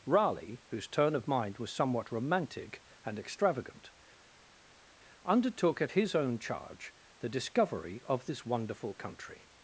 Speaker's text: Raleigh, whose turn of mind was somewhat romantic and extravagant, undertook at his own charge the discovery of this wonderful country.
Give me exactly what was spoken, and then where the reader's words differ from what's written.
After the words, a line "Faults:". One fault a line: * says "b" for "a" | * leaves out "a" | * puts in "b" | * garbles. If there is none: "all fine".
Raleigh, whose turn of mind was somewhat romantic and extravagant, undertook at his own charge the discovery of this wonderful country.
Faults:
all fine